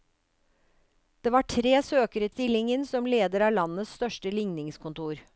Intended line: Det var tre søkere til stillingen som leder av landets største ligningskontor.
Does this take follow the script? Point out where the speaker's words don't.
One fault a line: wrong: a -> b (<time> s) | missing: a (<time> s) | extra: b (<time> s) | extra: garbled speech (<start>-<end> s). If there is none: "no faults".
missing: til (2.3 s)